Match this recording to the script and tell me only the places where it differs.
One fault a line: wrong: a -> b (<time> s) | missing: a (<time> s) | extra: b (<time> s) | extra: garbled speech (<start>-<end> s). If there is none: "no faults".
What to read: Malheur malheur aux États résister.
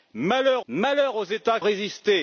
no faults